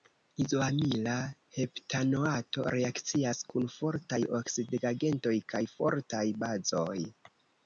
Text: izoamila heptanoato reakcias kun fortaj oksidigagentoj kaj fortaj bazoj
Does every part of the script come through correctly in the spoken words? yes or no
yes